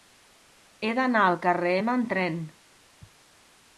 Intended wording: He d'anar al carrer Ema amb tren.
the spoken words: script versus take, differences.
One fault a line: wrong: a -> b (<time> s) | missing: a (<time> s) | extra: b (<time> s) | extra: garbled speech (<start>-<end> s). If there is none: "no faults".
no faults